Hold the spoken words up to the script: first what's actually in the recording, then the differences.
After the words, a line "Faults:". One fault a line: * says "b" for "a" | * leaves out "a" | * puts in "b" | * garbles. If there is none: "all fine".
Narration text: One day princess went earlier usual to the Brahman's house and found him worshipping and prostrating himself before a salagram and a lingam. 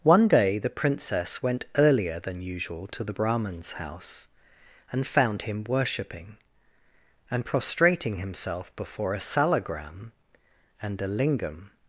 One day the princess went earlier than usual to the Brahman's house and found him worshipping and prostrating himself before a salagram and a lingam.
Faults:
* puts in "the"
* puts in "than"